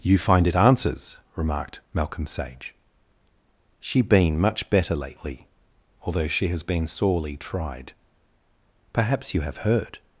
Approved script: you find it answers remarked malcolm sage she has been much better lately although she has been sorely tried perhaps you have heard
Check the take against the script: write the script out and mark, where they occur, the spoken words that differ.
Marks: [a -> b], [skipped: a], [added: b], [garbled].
you find it answers remarked malcolm sage she [skipped: has] been much better lately although she has been sorely tried perhaps you have heard